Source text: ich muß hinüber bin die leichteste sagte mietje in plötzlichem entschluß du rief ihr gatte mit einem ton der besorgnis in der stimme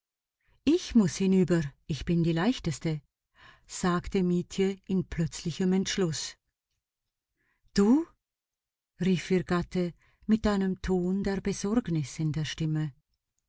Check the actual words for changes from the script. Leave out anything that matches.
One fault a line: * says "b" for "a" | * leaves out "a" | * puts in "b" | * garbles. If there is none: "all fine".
* puts in "ich"